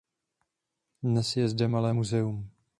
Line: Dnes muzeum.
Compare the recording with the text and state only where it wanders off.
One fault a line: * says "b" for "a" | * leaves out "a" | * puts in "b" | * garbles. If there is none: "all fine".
* puts in "je zde malé"